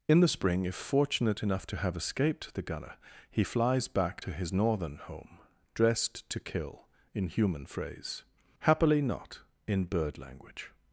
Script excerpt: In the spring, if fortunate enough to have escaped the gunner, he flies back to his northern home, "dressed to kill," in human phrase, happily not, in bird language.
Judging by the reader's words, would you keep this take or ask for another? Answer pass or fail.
pass